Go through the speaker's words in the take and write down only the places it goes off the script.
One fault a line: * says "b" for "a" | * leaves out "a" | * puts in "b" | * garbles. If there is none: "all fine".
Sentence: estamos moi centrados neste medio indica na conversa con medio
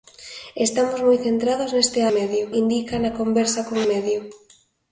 all fine